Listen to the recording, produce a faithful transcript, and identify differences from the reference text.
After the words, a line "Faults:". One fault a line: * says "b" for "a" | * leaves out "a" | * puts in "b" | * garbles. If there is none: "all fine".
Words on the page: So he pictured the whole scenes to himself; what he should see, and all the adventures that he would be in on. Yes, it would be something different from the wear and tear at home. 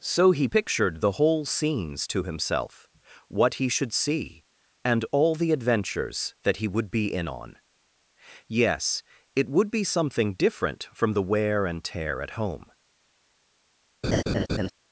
So he pictured the whole scenes to himself; what he should see, and all the adventures that he would be in on. Yes, it would be something different from the wear and tear at home.
Faults:
all fine